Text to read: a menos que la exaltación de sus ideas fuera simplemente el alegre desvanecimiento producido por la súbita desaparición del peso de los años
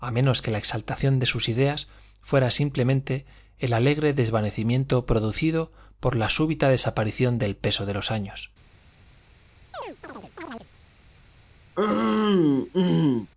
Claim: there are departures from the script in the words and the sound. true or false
true